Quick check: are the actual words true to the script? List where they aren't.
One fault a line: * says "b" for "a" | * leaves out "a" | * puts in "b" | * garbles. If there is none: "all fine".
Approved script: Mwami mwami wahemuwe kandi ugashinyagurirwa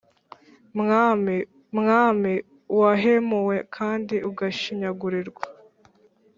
all fine